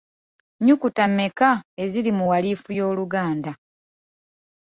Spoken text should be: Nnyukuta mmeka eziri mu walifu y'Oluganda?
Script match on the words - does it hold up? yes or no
yes